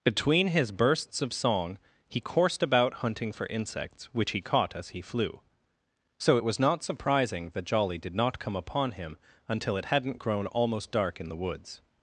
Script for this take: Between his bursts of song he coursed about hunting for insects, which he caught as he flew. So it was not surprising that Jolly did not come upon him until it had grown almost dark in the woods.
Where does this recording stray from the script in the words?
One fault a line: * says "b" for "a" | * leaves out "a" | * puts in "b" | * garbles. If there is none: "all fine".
* says "hadn't" for "had"